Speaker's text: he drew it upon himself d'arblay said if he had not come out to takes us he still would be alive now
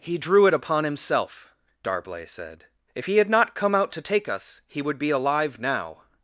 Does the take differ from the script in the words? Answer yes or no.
yes